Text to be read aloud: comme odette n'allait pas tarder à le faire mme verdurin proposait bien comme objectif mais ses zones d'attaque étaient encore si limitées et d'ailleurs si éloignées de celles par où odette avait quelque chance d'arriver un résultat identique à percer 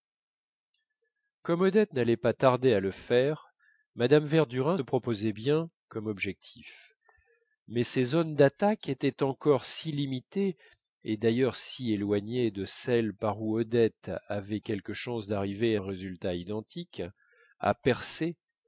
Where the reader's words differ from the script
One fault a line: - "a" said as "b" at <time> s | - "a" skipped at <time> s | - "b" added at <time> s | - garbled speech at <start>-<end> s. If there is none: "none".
none